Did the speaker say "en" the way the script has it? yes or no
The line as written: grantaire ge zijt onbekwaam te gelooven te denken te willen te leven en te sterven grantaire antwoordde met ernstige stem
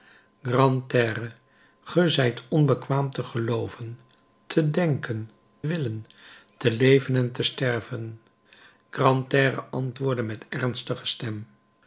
yes